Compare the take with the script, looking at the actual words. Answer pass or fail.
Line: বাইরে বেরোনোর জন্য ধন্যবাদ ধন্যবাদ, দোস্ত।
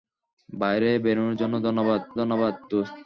pass